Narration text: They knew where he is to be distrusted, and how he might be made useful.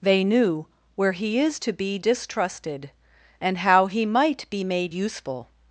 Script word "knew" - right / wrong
right